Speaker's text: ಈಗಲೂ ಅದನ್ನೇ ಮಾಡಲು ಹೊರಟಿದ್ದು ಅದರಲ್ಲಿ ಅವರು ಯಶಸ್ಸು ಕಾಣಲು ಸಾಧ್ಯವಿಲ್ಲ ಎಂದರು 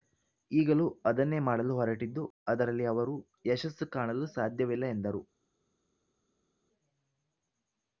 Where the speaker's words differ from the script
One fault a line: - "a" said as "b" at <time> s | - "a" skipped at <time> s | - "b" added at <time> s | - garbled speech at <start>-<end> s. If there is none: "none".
none